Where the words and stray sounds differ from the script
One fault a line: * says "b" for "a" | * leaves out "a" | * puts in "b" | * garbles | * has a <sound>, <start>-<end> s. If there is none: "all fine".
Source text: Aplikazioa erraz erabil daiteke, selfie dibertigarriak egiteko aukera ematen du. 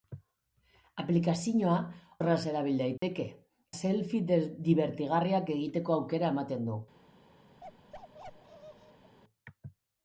* has a dropout, 3.0-3.0 s
* has a bark, 7.6-9.2 s